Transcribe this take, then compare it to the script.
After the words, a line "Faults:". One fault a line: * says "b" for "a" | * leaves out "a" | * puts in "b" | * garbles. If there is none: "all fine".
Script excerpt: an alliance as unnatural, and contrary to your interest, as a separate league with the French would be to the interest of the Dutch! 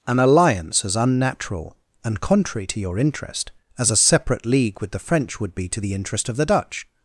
an alliance as unnatural, and contrary to your interest, as a separate league with the French would be to the interest of the Dutch!
Faults:
all fine